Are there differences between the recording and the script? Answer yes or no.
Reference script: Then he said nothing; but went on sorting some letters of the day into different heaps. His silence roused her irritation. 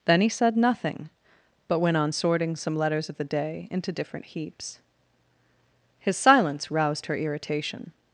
no